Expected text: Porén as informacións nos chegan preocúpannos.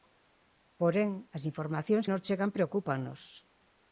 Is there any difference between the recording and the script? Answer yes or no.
no